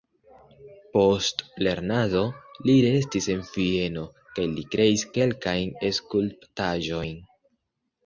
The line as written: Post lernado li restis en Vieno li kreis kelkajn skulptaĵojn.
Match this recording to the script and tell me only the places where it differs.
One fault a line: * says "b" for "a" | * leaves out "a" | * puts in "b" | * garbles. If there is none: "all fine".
* puts in "kaj"